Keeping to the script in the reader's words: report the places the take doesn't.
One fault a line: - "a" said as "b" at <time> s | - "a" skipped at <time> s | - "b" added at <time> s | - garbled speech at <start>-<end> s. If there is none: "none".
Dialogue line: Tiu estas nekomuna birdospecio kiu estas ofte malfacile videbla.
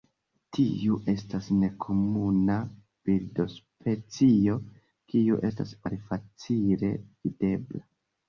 - "ofte" skipped at 5.8 s